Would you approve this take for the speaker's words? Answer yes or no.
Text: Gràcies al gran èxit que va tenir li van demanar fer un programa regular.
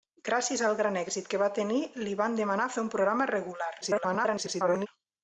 no